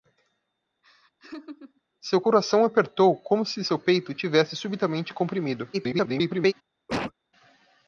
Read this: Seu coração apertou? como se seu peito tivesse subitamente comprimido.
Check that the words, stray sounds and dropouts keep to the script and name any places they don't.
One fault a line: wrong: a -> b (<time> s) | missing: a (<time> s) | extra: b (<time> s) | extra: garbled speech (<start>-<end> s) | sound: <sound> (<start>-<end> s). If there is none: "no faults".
sound: laugh (0.8-1.8 s)
extra: garbled speech (5.7-6.5 s)
sound: cough (6.9-7.1 s)